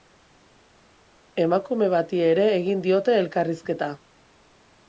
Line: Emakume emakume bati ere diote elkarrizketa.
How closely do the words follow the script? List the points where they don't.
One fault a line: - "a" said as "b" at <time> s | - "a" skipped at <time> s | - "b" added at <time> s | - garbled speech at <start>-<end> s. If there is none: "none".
- "emakume" skipped at 1.9 s
- "egin" added at 2.6 s